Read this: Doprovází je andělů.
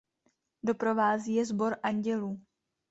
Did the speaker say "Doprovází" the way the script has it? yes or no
yes